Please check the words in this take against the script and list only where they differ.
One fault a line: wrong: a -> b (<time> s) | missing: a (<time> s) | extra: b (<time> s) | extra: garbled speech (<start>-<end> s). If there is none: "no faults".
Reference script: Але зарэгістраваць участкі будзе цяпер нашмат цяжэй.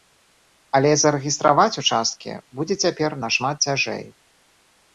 no faults